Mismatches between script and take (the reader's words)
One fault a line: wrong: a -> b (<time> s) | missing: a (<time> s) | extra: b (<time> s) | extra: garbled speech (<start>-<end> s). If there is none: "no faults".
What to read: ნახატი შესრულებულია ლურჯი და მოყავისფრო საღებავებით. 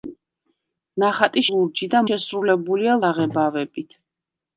missing: შესრულებულია (1.4 s)
wrong: მოყავისფრო -> შესრულებულია (2.1 s)